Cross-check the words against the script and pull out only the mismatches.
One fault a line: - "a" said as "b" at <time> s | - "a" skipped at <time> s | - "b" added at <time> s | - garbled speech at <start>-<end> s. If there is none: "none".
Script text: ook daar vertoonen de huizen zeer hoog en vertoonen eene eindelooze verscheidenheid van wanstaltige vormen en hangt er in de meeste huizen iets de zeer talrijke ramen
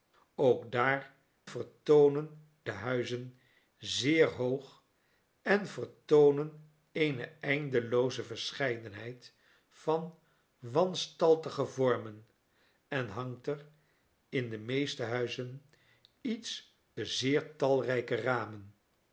none